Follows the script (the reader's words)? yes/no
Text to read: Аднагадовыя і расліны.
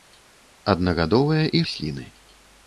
yes